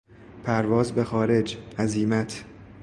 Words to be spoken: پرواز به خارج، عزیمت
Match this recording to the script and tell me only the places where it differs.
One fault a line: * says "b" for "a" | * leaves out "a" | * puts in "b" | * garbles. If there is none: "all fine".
all fine